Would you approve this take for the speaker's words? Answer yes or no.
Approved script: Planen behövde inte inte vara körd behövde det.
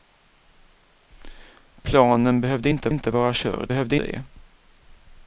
yes